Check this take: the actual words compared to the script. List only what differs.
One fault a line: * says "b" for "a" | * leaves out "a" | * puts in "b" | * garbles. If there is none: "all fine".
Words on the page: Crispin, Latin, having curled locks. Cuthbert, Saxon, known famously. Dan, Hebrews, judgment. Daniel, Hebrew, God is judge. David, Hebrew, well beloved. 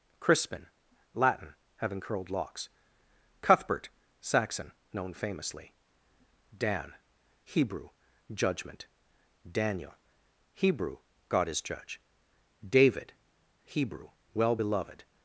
* says "Hebrew" for "Hebrews"